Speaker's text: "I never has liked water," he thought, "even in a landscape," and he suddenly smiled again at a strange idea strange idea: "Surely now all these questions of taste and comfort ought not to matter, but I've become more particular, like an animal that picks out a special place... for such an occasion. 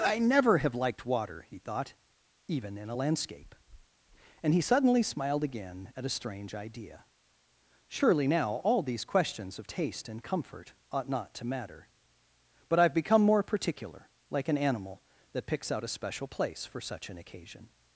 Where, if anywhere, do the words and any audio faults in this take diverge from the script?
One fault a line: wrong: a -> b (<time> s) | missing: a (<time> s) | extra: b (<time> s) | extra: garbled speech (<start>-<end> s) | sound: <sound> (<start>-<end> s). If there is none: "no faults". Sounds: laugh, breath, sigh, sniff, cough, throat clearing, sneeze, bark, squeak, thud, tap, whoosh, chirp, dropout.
wrong: has -> have (0.6 s)
missing: strange idea (7.0 s)